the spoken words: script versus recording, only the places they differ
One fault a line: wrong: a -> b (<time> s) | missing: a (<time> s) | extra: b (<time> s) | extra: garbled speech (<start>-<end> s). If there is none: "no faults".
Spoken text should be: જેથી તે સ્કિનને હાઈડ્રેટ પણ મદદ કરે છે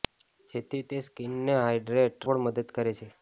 no faults